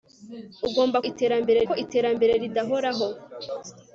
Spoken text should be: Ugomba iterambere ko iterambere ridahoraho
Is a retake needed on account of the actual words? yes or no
no